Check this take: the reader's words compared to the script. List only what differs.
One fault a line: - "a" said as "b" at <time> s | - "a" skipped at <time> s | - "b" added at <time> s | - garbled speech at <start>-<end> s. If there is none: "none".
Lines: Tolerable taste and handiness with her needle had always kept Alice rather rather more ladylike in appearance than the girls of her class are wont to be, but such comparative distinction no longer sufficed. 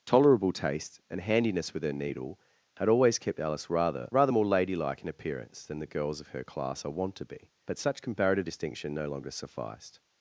none